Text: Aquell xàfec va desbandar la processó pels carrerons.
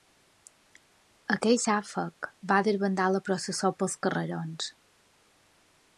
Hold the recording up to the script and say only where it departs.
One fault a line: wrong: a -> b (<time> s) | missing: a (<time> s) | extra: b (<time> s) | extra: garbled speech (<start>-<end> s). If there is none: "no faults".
no faults